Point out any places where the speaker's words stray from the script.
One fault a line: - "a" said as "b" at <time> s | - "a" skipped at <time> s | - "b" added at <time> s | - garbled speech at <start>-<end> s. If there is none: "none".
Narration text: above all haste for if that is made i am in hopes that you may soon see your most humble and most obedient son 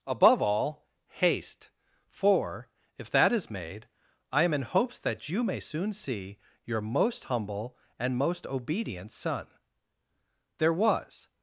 - "there was" added at 10.6 s